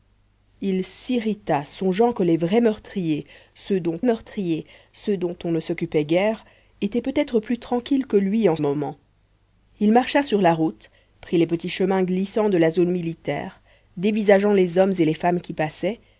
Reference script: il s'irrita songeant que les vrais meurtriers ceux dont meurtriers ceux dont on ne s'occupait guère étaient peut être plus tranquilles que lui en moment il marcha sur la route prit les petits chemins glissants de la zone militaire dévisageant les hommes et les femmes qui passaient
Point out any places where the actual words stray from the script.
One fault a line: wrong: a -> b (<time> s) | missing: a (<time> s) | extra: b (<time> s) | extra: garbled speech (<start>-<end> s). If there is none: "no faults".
no faults